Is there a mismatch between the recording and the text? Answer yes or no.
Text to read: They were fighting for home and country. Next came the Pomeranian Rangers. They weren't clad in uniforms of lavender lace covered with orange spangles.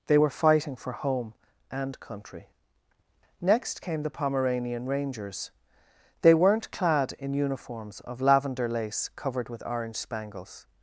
no